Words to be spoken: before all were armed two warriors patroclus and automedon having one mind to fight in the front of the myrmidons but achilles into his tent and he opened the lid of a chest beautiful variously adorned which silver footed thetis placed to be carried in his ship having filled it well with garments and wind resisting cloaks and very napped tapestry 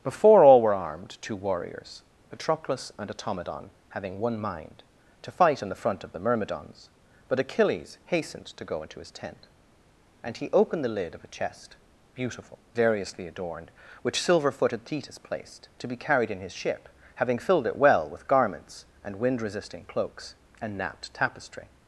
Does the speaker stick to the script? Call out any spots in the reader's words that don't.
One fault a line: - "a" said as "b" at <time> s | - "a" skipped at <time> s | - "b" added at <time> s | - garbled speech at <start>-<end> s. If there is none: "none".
- "hastened to go" added at 8.1 s
- "very" skipped at 20.8 s